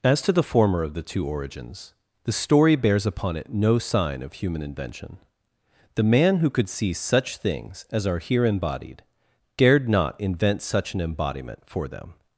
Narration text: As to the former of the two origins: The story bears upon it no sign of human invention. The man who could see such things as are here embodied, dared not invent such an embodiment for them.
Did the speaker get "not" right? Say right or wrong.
right